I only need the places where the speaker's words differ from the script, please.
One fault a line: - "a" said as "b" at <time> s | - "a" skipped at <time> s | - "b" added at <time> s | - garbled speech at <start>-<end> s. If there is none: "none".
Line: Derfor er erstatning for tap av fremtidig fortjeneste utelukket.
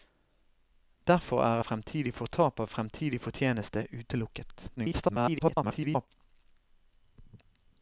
- "erstatning" said as "fremtidig" at 1.7 s
- garbled speech at 4.8-6.1 s